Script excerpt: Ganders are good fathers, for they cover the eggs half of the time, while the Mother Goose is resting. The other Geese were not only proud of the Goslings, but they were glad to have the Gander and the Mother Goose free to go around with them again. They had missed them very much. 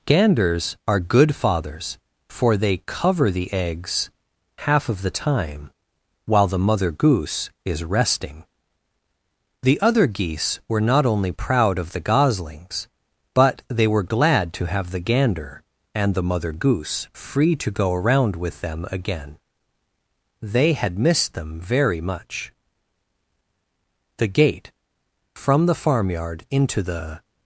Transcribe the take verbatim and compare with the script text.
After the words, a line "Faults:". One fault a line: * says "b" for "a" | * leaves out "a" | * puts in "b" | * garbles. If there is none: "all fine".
Ganders are good fathers, for they cover the eggs half of the time, while the Mother Goose is resting. The other Geese were not only proud of the Goslings, but they were glad to have the Gander and the Mother Goose free to go around with them again. They had missed them very much. The gate from the farmyard into the
Faults:
* puts in "The gate from the farmyard into the"